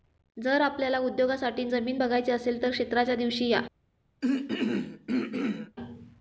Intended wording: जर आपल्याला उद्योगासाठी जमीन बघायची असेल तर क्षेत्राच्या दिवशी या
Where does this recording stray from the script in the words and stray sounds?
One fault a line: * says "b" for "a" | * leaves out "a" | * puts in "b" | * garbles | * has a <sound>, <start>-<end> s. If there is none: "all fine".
* has a throat clearing, 4.2-5.8 s